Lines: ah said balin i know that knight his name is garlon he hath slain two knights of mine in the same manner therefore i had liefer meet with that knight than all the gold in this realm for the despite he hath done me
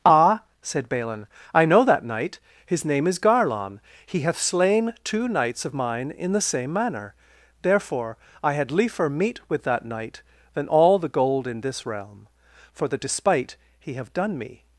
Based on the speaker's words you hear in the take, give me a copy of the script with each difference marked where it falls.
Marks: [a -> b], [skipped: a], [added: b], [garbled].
ah said balin i know that knight his name is garlon he hath slain two knights of mine in the same manner therefore i had liefer meet with that knight than all the gold in this realm for the despite he [hath -> have] done me